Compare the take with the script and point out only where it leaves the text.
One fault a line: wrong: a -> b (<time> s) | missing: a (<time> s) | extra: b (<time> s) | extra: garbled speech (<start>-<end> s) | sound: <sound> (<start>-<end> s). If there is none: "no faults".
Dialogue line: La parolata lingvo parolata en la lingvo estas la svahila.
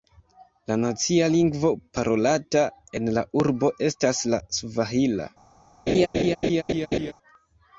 wrong: parolata -> nacia (0.8 s)
wrong: lingvo -> urbo (3.4 s)
sound: laugh (5.9-7.1 s)